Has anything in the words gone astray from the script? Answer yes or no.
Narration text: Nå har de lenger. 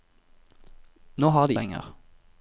no